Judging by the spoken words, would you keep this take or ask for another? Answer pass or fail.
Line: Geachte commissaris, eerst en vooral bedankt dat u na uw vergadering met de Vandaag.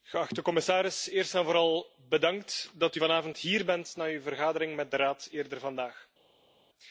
fail